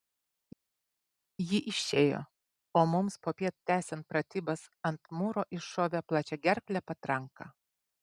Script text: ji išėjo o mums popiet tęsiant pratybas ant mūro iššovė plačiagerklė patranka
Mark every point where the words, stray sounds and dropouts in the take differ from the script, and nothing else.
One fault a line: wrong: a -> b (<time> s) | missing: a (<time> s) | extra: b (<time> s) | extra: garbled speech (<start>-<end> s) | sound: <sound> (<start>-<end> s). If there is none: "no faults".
no faults